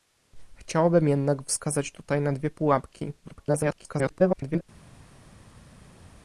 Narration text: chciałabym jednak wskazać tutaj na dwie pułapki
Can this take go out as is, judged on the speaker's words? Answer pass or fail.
fail